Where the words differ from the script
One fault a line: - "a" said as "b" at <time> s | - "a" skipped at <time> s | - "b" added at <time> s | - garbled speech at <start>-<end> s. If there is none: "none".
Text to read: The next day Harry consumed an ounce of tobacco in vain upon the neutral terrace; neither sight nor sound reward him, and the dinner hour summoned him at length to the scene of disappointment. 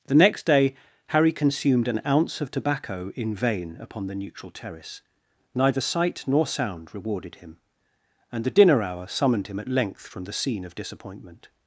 - "reward" said as "rewarded" at 6.9 s
- "to" said as "from" at 10.1 s